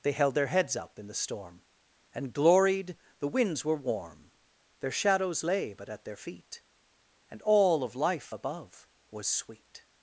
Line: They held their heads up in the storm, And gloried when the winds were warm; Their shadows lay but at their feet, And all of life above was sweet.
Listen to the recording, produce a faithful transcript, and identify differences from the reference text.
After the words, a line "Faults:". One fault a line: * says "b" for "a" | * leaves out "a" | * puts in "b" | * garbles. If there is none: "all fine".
They held their heads up in the storm, And gloried the winds were warm; Their shadows lay but at their feet, And all of life above was sweet.
Faults:
* leaves out "when"